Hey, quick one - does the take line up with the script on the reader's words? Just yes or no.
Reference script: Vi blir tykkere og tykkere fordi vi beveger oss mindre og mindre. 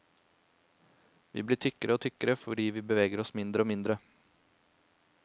yes